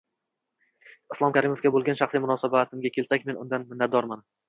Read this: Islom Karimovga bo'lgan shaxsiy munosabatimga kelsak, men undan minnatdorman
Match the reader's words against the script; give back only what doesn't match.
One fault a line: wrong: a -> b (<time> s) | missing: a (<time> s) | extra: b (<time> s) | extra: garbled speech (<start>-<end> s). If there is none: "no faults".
no faults